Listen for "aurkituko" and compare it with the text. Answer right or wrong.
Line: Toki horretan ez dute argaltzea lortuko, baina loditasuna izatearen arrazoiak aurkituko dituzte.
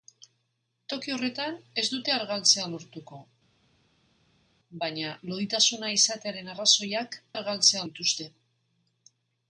wrong